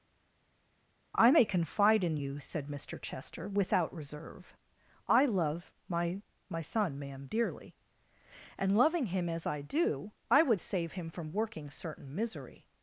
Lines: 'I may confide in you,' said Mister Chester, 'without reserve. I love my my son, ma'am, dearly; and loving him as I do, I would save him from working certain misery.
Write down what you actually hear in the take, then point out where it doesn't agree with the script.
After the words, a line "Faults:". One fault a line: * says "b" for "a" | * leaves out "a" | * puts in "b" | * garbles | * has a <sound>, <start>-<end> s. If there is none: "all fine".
'I may confide in you,' said Mister Chester, 'without reserve. I love my my son, ma'am, dearly; and loving him as I do, I would save him from working certain misery.
Faults:
all fine